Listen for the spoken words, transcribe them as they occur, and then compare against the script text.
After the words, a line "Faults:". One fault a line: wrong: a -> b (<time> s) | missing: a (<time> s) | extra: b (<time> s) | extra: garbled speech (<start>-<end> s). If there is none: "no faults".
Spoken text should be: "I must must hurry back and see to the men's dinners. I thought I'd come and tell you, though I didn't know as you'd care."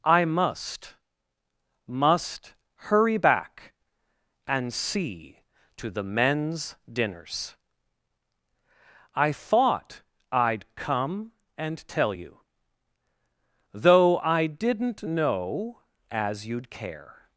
"I must must hurry back and see to the men's dinners. I thought I'd come and tell you, though I didn't know as you'd care."
Faults:
no faults